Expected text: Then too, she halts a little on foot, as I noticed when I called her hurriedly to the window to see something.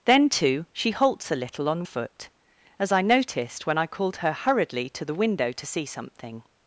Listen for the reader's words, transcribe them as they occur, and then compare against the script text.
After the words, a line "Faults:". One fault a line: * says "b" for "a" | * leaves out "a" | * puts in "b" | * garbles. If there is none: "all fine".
Then too, she halts a little on foot, as I noticed when I called her hurriedly to the window to see something.
Faults:
all fine